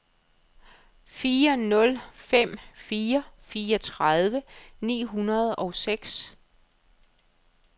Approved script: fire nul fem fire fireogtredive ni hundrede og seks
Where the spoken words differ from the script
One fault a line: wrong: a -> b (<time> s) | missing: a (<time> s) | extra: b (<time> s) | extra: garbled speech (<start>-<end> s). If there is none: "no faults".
no faults